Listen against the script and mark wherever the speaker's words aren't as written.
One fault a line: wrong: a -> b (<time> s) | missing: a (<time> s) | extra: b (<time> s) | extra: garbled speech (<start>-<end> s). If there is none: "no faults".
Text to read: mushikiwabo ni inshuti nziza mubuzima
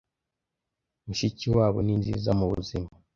missing: inshuti (1.9 s)